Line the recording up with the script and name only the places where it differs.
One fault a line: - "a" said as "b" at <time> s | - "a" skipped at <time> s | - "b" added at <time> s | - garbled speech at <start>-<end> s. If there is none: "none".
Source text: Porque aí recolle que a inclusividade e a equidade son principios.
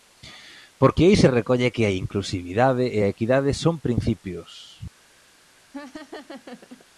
- "se" added at 1.1 s